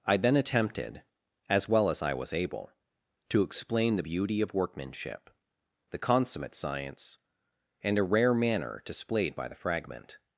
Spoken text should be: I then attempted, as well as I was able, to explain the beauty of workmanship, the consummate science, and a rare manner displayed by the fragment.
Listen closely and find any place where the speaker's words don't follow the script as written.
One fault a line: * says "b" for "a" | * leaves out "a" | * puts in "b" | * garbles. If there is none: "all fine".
all fine